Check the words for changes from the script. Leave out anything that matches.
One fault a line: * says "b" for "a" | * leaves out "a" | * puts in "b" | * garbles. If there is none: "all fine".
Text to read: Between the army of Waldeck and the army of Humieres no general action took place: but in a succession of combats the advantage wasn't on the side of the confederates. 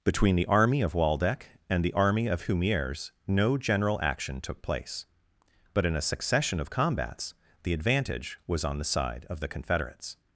* says "was" for "wasn't"